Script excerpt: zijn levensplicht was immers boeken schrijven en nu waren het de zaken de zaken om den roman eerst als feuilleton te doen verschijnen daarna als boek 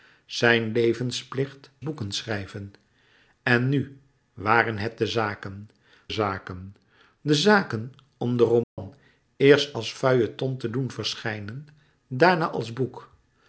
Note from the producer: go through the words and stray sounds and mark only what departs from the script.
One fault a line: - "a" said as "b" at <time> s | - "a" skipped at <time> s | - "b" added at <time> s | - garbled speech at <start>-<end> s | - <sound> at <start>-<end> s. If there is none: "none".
- "was immers" skipped at 1.7 s
- "zaken" added at 6.1 s
- dropout at 8.6-8.8 s